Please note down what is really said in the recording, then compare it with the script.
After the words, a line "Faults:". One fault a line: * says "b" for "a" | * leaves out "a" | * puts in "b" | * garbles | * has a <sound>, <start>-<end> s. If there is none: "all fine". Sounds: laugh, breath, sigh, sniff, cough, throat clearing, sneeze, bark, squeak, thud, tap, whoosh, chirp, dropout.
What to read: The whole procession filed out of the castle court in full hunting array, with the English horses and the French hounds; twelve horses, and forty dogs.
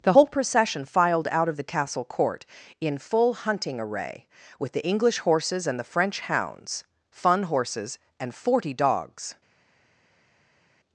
The whole procession filed out of the castle court in full hunting array, with the English horses and the French hounds; fun horses, and forty dogs.
Faults:
* says "fun" for "twelve"